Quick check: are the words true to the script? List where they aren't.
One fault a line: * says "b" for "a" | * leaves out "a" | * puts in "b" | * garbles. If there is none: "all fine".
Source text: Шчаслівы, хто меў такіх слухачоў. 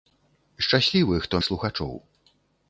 * leaves out "меў такіх"